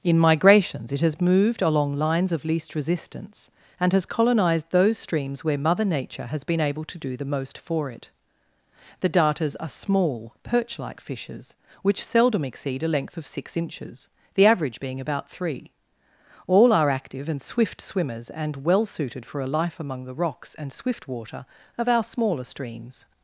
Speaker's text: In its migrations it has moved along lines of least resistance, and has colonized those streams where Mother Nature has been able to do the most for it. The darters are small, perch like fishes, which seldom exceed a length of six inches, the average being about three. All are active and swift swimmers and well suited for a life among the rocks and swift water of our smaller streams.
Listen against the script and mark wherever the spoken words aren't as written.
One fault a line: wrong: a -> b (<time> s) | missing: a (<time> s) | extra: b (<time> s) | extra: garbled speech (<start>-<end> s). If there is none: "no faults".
missing: its (0.2 s)